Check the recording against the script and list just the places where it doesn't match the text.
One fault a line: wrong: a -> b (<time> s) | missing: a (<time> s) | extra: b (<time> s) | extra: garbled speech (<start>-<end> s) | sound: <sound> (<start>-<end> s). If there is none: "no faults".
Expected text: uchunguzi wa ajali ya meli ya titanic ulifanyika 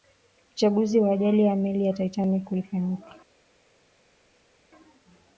no faults